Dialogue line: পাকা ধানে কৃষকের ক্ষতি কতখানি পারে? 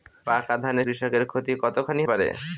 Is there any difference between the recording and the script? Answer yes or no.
no